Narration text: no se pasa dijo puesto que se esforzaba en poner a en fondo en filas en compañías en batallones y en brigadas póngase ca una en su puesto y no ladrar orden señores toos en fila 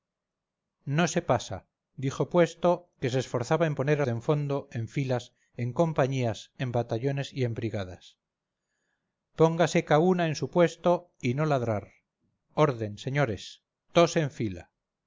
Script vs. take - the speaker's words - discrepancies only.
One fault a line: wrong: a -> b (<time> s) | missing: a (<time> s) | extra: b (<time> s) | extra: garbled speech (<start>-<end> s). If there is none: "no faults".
no faults